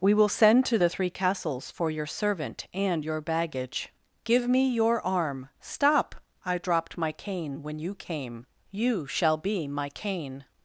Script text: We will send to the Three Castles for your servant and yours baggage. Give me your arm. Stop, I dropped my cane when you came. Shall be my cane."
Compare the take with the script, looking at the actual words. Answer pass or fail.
fail